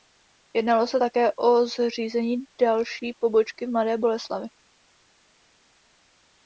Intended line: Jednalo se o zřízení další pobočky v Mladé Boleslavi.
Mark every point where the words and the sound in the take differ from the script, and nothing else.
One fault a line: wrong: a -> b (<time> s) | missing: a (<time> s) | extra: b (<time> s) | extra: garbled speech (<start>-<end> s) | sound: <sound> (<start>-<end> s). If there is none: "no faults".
extra: také (1.0 s)